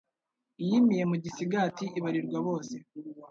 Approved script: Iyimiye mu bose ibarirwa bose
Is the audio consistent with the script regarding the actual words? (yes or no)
no